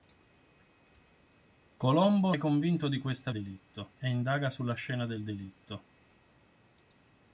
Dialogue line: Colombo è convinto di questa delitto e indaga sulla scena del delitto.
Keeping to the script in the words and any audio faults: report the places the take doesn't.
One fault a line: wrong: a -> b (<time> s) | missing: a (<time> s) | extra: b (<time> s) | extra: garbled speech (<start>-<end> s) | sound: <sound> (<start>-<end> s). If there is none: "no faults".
no faults